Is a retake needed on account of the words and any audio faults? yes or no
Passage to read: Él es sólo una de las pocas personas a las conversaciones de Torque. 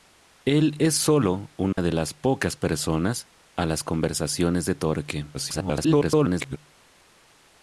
yes